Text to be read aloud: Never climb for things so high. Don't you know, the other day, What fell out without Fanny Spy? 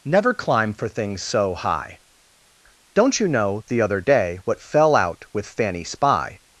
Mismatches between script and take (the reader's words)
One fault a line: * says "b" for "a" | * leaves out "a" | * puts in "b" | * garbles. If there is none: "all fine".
* says "with" for "without"